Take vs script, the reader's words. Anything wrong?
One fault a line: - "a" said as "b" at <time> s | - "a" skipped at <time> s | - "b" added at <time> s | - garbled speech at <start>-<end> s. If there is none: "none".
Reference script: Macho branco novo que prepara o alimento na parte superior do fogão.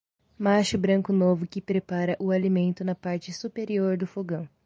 none